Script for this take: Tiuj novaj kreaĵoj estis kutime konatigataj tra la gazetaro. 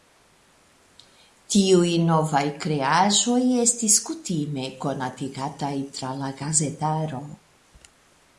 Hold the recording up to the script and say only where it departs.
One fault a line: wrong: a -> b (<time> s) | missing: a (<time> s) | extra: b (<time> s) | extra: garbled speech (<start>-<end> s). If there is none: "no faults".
no faults